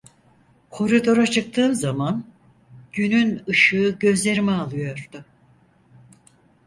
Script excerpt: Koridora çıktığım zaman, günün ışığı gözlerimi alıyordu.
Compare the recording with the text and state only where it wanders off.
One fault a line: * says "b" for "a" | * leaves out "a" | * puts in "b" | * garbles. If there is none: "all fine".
all fine